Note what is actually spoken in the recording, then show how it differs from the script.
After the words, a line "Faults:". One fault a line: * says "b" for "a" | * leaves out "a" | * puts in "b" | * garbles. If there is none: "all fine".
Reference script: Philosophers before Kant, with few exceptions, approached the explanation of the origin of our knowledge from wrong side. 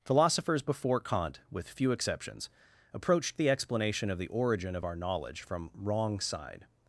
Philosophers before Kant, with few exceptions, approached the explanation of the origin of our knowledge from wrong side.
Faults:
all fine